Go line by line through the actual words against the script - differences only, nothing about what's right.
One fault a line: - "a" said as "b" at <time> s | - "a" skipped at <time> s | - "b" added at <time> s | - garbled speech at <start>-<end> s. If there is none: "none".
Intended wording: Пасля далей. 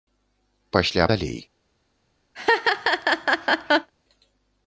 none